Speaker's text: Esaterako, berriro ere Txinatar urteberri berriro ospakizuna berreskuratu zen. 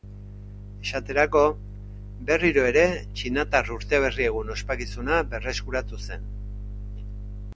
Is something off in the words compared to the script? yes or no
yes